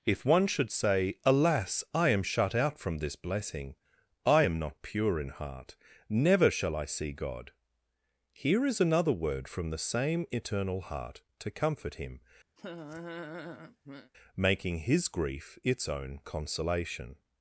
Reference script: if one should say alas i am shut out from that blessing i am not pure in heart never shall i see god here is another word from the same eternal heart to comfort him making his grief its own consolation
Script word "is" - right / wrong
right